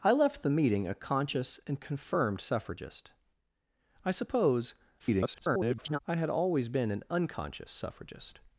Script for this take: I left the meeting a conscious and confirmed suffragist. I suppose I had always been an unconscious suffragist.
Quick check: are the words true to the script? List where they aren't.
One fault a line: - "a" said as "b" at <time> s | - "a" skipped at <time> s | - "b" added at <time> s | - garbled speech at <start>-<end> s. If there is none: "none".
- garbled speech at 5.0-6.0 s